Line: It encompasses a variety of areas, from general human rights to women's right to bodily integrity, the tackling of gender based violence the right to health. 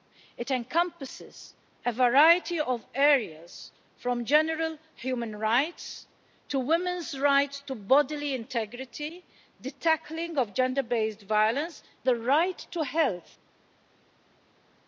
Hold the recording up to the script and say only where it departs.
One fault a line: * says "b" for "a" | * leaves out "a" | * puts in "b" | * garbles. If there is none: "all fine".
all fine